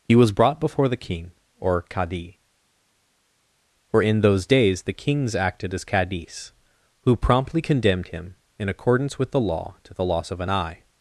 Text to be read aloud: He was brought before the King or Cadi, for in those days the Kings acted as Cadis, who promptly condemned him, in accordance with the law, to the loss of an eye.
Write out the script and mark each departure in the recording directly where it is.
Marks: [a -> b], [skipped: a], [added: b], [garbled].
He was brought before the King or Cadi, for in those days the Kings acted as Cadis, who promptly condemned him, in accordance with the law, to the loss of an eye.